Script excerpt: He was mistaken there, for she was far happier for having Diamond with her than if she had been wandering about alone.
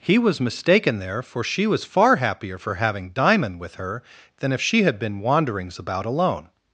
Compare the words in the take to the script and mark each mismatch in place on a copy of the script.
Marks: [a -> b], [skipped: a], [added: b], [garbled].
He was mistaken there, for she was far happier for having Diamond with her than if she had been [wandering -> wanderings] about alone.